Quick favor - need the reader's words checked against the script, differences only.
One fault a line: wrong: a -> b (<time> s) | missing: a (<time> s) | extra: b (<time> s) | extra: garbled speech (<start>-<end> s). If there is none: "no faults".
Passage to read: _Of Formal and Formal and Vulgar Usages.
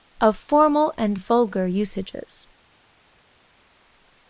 missing: Formal and (1.1 s)